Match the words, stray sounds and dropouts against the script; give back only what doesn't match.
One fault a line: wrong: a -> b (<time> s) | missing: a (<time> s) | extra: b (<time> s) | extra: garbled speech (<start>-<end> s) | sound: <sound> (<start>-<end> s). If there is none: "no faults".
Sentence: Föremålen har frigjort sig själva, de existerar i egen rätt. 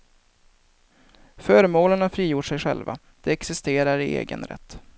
no faults